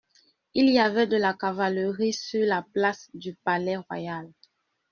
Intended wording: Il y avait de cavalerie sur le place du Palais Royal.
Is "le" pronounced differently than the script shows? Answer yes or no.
yes